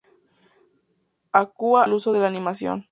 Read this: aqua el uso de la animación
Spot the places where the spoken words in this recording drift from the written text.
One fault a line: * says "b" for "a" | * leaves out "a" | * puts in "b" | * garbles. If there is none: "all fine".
all fine